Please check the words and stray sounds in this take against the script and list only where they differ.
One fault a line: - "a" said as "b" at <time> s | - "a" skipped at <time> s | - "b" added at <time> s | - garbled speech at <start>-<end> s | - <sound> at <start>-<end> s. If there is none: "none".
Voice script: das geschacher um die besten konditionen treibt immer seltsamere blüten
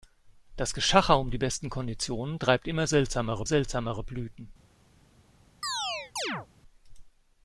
- "seltsamere" added at 3.5 s
- chirp at 5.6-6.5 s